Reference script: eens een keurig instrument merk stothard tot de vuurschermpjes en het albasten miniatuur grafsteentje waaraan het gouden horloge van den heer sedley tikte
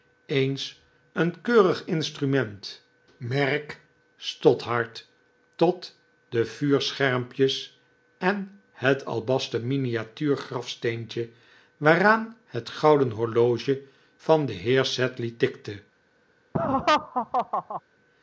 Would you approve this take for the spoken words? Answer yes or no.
yes